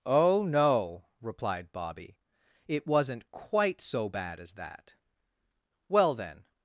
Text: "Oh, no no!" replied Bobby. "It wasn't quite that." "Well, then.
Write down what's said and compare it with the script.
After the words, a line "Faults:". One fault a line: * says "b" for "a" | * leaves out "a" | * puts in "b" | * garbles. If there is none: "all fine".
"Oh, no!" replied Bobby. "It wasn't quite so bad as that." "Well, then.
Faults:
* leaves out "no"
* puts in "so bad as"